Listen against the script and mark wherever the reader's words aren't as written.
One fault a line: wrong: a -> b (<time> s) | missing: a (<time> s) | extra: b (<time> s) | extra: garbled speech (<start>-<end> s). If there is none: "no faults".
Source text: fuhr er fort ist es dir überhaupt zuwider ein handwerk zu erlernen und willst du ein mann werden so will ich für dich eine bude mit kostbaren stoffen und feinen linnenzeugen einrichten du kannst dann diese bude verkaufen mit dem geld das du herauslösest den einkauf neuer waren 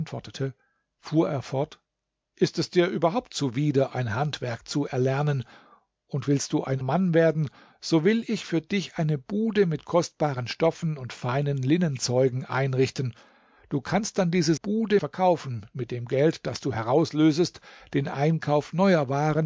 no faults